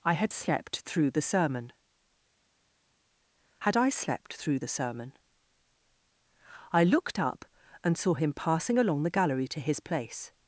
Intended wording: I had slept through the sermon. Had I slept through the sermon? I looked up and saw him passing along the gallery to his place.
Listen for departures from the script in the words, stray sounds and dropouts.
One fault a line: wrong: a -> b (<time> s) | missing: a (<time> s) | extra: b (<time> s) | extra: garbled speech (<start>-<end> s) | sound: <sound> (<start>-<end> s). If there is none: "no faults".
no faults